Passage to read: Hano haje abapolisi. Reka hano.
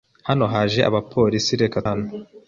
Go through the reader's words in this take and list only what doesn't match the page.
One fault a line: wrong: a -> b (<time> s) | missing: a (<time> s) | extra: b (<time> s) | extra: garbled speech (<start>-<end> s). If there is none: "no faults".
no faults